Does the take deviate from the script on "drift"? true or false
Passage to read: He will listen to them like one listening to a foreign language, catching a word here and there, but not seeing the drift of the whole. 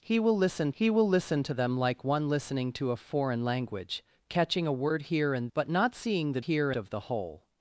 true